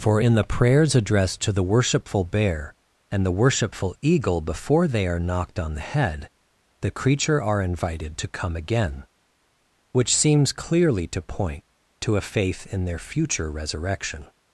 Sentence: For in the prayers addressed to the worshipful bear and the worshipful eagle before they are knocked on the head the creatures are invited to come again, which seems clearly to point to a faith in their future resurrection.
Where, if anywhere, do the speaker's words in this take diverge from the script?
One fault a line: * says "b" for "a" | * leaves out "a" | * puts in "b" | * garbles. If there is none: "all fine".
* says "creature" for "creatures"